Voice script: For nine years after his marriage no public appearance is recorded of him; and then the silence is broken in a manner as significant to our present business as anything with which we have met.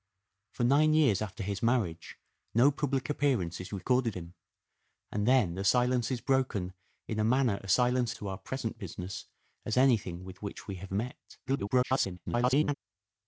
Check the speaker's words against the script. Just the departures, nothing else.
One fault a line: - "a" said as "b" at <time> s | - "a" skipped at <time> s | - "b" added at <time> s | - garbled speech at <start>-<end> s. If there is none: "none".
- "of" skipped at 4.2 s
- "significant" said as "silence" at 7.7 s
- garbled speech at 11.5-12.7 s